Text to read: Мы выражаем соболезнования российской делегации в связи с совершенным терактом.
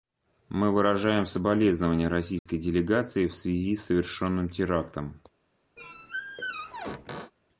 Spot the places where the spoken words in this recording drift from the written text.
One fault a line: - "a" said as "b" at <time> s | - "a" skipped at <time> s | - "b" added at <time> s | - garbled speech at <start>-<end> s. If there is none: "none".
none